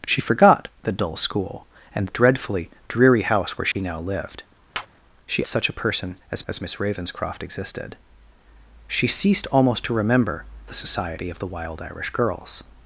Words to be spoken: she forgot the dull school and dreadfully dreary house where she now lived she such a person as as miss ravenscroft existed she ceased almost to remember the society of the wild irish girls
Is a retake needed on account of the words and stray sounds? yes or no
yes